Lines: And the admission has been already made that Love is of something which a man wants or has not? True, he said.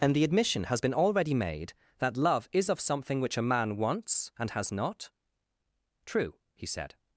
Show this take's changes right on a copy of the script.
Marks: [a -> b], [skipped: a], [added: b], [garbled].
And the admission has been already made that Love is of something which a man wants [or -> and] has not? True, he said.